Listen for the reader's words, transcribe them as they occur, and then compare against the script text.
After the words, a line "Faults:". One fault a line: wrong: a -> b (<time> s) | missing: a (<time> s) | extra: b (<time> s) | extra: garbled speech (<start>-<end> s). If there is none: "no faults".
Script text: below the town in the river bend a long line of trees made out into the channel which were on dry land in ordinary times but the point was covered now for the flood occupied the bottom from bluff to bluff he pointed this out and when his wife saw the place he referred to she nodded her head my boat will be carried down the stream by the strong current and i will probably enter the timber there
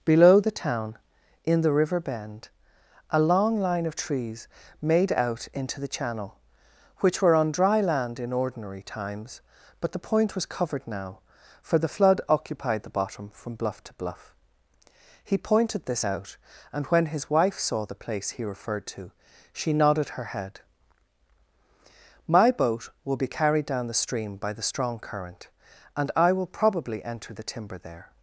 below the town in the river bend a long line of trees made out into the channel which were on dry land in ordinary times but the point was covered now for the flood occupied the bottom from bluff to bluff he pointed this out and when his wife saw the place he referred to she nodded her head my boat will be carried down the stream by the strong current and i will probably enter the timber there
Faults:
no faults